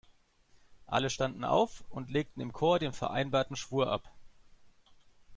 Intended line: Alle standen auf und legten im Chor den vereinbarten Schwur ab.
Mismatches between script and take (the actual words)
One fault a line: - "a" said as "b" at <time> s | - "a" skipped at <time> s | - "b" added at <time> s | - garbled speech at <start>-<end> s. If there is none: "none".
none